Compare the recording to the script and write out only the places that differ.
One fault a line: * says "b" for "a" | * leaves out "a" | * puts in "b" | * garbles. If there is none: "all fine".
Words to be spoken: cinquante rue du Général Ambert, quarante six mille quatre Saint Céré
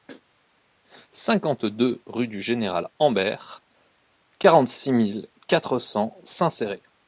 * puts in "deux"
* puts in "cents"